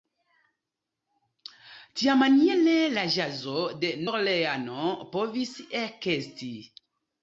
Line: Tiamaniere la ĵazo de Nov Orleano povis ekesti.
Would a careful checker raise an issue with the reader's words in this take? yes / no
yes